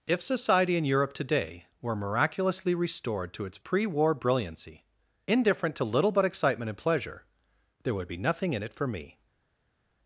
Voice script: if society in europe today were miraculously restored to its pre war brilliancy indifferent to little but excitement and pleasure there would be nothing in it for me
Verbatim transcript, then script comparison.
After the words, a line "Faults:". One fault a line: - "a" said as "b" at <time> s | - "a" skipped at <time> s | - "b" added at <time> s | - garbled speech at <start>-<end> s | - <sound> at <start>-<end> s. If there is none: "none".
if society in europe today were miraculously restored to its pre war brilliancy indifferent to little but excitement and pleasure there would be nothing in it for me
Faults:
none